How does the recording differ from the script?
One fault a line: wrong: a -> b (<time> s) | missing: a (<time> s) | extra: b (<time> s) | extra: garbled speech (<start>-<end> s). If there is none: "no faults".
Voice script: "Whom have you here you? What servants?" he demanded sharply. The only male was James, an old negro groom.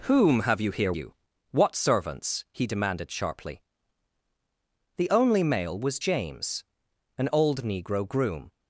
no faults